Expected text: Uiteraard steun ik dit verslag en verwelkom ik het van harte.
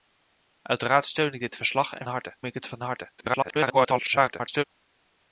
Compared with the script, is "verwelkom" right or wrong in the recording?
wrong